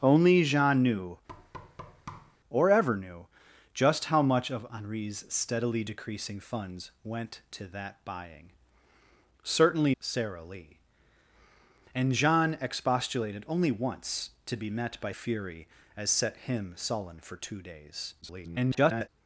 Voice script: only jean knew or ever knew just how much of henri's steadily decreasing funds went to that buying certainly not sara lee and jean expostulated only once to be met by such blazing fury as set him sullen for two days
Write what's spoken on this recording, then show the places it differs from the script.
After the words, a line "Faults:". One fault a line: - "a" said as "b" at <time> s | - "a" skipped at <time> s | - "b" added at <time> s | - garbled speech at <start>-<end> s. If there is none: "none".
only jean knew or ever knew just how much of henri's steadily decreasing funds went to that buying certainly sara lee and jean expostulated only once to be met by fury as set him sullen for two days [garbled]
Faults:
- "not" skipped at 9.9 s
- "such blazing" skipped at 15.1 s
- garbled speech at 18.2-19.1 s